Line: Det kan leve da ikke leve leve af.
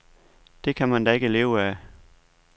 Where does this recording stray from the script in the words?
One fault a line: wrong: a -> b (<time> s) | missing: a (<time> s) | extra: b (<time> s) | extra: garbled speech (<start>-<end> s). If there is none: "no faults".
wrong: leve -> man (0.9 s)
missing: leve (1.6 s)